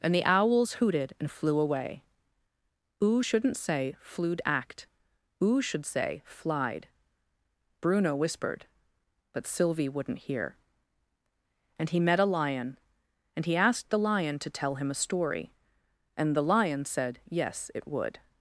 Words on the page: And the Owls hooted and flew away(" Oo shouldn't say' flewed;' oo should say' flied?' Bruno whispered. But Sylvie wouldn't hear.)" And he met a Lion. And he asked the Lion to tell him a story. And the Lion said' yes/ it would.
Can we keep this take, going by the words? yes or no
no